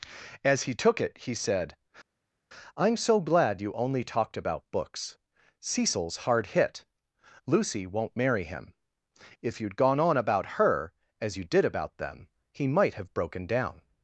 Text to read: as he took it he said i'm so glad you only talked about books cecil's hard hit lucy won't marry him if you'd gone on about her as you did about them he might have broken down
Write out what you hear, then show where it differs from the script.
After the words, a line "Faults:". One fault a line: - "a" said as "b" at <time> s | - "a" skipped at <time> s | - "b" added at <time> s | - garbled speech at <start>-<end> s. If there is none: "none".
as he took it he said i'm so glad you only talked about books cecil's hard hit lucy won't marry him if you'd gone on about her as you did about them he might have broken down
Faults:
none